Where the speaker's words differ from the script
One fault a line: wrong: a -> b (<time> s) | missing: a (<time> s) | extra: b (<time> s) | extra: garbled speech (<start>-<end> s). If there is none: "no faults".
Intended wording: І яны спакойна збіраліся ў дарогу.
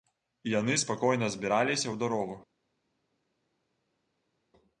no faults